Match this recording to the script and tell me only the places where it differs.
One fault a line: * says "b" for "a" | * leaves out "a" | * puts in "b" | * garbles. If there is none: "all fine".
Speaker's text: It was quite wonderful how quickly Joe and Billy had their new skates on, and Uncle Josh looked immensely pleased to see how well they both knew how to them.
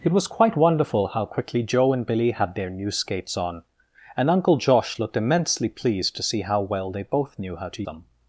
all fine